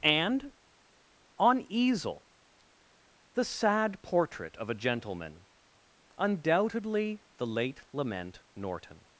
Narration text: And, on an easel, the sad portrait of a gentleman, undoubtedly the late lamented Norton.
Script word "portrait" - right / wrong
right